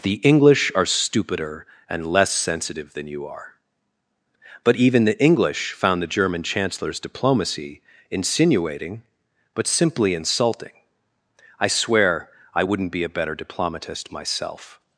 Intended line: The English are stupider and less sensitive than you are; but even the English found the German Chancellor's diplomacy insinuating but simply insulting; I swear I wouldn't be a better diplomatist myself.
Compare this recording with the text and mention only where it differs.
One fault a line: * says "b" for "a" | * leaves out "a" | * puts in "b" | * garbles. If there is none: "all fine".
all fine